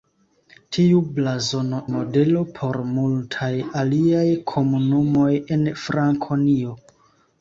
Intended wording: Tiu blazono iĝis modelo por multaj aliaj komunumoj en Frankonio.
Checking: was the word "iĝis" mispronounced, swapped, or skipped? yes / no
yes